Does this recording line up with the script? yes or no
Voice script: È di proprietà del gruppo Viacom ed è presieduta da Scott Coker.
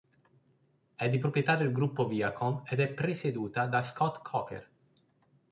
yes